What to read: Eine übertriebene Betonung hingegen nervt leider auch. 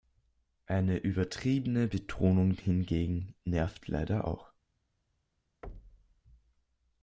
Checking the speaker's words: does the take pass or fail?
pass